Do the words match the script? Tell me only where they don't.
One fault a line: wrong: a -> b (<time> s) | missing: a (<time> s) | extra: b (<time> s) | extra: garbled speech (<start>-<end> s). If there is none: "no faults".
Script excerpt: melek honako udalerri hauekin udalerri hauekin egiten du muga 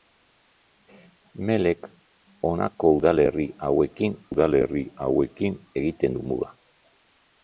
no faults